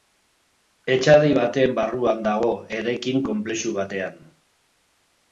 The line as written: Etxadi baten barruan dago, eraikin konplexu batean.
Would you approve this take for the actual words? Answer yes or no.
yes